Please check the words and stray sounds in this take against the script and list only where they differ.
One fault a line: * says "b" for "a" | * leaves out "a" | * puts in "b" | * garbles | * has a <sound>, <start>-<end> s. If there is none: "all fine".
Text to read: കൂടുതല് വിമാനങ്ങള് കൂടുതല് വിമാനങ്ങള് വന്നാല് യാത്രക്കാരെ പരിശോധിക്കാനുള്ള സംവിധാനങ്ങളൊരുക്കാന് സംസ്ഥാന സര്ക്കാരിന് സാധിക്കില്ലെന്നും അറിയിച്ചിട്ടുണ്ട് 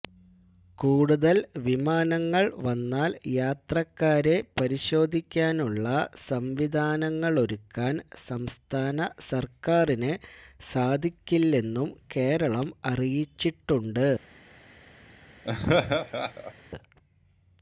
* leaves out "കൂടുതല് വിമാനങ്ങള്"
* puts in "കേരളം"
* has a laugh, 15.4-16.5 s